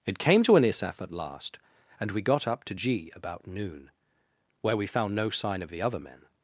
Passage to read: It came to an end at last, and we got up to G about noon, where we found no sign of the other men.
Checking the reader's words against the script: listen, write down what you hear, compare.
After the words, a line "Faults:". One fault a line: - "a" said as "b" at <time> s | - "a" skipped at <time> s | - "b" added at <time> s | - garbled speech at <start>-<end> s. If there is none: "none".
It came to an isaf at last, and we got up to G about noon, where we found no sign of the other men.
Faults:
- "end" said as "isaf" at 0.6 s